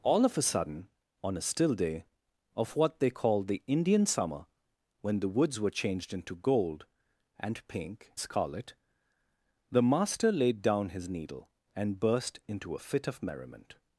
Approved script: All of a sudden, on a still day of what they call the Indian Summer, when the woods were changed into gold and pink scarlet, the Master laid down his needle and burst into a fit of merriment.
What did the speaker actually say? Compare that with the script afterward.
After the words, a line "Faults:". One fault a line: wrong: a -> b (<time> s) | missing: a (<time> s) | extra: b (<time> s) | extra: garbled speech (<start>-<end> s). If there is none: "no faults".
All of a sudden, on a still day of what they call the Indian Summer, when the woods were changed into gold and pink scarlet, the Master laid down his needle and burst into a fit of merriment.
Faults:
no faults